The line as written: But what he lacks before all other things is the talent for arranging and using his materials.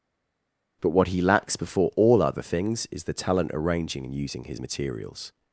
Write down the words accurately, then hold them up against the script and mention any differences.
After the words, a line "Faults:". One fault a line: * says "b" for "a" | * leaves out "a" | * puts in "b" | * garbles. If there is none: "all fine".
But what he lacks before all other things is the talent arranging and using his materials.
Faults:
* leaves out "for"